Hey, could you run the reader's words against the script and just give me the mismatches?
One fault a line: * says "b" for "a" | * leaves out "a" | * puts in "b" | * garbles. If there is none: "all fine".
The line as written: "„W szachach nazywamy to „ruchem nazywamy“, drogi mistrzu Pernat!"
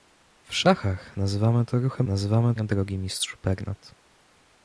all fine